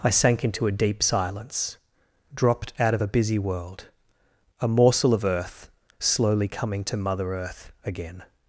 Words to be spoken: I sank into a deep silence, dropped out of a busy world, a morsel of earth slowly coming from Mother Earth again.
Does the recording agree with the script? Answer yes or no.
no